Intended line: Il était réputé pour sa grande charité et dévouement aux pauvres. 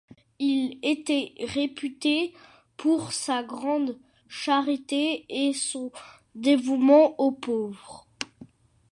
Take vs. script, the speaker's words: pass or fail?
fail